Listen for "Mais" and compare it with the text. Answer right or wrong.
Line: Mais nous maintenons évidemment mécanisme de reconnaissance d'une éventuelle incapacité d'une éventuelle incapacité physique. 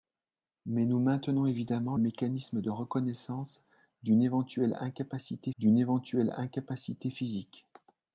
right